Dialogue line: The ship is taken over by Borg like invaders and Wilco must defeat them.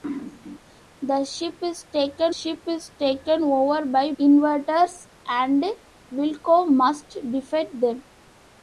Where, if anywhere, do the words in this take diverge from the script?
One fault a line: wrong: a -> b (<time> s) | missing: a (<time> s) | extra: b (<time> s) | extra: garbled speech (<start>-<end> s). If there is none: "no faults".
extra: ship is taken (2.3 s)
missing: Borg like (4.1 s)